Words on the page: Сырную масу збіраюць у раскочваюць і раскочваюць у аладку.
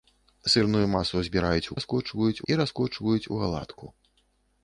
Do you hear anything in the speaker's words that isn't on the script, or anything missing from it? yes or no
no